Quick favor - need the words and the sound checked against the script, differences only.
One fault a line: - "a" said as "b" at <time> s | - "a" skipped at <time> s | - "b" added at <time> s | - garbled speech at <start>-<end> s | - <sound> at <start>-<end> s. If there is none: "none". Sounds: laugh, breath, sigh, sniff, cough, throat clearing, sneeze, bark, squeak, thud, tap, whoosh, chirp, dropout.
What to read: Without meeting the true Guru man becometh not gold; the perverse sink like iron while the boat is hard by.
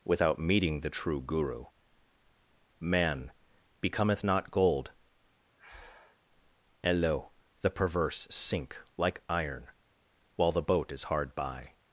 - breath at 5.6-6.2 s
- "and lo" added at 6.8 s